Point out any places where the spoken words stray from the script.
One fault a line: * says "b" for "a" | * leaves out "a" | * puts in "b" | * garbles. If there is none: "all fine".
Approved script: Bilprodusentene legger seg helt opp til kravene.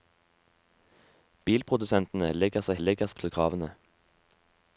* says "legger" for "helt"